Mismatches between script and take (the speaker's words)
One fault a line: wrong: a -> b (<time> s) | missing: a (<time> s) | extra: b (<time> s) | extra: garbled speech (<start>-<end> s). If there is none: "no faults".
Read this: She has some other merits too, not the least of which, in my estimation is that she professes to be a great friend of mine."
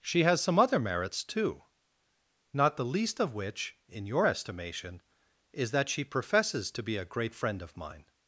wrong: my -> your (4.0 s)